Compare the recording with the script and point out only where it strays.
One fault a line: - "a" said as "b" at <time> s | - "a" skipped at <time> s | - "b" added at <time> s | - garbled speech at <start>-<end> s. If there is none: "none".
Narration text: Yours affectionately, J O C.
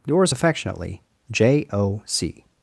none